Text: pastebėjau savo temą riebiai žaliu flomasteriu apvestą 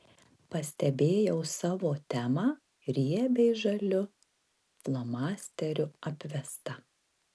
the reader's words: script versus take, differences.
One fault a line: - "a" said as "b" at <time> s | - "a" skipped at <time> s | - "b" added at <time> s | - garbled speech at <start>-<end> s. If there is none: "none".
none